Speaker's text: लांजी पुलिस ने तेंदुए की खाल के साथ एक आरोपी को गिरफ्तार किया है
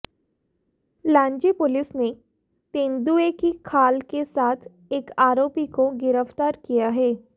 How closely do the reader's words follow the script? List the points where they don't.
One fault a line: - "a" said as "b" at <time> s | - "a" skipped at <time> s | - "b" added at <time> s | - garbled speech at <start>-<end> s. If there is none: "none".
none